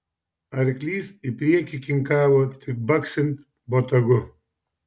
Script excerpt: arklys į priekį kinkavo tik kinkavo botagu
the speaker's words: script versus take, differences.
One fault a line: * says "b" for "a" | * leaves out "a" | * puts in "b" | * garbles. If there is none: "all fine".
* says "baksint" for "kinkavo"